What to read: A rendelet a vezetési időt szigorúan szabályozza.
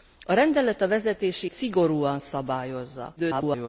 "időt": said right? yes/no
no